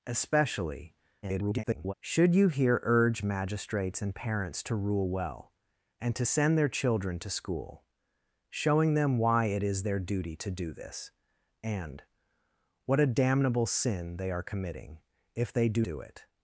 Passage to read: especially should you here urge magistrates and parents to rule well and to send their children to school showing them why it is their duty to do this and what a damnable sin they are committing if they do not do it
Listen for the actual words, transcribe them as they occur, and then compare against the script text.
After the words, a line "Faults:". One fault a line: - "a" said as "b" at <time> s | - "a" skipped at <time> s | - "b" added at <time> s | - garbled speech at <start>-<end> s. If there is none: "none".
especially [garbled] should you here urge magistrates and parents to rule well and to send their children to school showing them why it is their duty to do this and what a damnable sin they are committing if they do do it
Faults:
- garbled speech at 1.2-1.9 s
- "not" skipped at 15.8 s